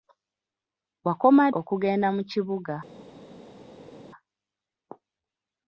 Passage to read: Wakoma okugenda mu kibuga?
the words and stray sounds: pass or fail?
pass